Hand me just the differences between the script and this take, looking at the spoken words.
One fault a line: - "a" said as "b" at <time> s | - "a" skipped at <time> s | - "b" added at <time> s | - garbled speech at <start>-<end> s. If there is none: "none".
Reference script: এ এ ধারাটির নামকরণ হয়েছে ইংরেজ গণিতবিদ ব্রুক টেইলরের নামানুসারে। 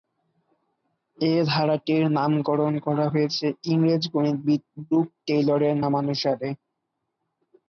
- "এ" skipped at 1.3 s
- "করা" added at 2.9 s